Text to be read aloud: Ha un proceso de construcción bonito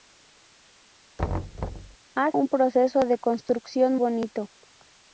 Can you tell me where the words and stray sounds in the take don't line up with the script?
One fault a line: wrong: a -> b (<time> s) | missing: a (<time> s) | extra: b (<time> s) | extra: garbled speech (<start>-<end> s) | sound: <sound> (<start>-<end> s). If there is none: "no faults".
sound: thud (1.2-2.0 s)